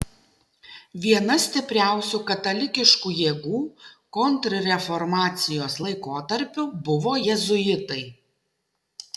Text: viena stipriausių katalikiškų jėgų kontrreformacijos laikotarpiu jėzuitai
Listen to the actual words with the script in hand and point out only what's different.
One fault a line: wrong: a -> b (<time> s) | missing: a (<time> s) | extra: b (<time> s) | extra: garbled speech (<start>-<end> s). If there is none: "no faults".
extra: buvo (6.9 s)